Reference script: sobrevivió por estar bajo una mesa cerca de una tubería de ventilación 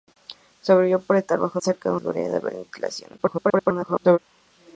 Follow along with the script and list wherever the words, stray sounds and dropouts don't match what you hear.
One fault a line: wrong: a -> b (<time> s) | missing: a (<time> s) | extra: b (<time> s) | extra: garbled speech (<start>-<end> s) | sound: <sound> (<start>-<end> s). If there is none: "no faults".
missing: una mesa (1.6 s)
missing: una (2.0 s)
extra: garbled speech (3.2-4.2 s)